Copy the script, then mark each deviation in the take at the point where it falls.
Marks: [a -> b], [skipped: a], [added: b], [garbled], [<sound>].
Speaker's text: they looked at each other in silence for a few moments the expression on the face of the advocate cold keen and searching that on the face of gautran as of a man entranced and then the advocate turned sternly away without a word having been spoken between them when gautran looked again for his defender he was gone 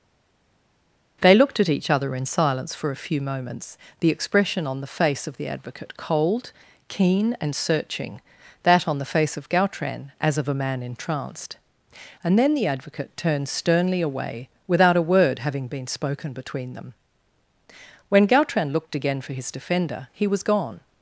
they looked at each other in silence for a few moments the expression on the face of the advocate cold keen and searching that on the face of gautran as of a man entranced and then the advocate turned sternly away without a word having been spoken between them when gautran looked again for his defender he was gone